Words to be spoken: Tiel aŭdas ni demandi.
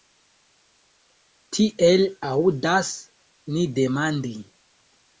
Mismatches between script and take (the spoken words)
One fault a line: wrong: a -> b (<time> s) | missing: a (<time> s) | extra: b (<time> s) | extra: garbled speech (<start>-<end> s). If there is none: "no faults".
no faults